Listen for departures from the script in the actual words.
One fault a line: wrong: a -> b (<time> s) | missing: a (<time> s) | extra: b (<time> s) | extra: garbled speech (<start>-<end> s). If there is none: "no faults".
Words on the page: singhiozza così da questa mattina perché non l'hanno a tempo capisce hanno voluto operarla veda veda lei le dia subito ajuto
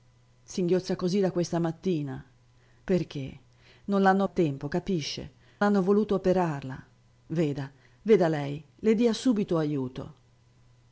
no faults